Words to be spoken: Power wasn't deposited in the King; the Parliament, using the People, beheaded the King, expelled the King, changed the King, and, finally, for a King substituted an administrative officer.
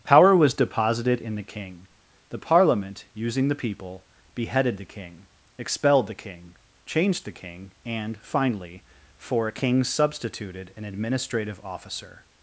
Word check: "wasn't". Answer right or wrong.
wrong